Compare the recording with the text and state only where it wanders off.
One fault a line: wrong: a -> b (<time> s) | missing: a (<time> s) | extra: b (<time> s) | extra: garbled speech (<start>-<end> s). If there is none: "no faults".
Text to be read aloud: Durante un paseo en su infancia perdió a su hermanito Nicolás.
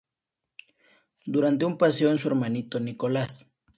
missing: su infancia perdió (2.2 s)